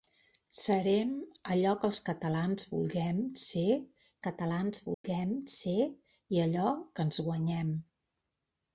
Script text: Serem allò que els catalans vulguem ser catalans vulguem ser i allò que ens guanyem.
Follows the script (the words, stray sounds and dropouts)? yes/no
no